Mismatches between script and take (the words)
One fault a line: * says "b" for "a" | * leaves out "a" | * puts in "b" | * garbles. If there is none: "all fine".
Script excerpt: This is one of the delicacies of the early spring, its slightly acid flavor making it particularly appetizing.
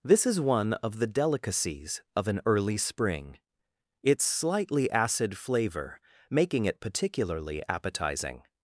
* says "an" for "the"